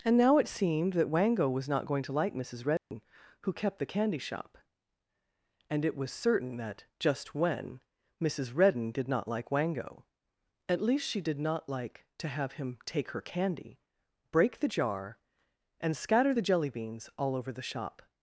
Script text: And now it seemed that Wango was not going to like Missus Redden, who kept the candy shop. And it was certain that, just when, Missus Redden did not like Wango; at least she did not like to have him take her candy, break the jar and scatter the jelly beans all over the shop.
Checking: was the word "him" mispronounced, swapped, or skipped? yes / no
no